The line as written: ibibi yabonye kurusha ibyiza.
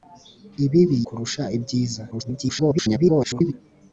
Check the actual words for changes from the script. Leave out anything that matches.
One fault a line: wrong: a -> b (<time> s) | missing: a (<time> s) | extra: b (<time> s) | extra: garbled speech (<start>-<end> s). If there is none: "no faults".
missing: yabonye (1.0 s)
extra: garbled speech (2.1-3.5 s)